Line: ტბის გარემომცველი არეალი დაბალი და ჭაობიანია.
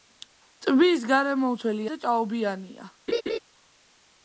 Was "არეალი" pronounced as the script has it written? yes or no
no